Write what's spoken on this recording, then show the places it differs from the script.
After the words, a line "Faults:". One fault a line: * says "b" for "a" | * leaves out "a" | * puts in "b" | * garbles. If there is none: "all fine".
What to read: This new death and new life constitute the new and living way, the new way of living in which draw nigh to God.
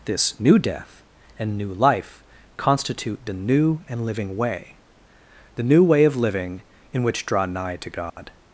This new death and new life constitute the new and living way, the new way of living in which draw nigh to God.
Faults:
all fine